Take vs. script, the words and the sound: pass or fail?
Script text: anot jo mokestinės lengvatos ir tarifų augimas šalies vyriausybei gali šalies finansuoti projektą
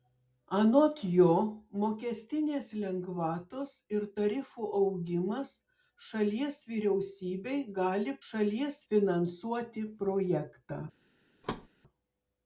fail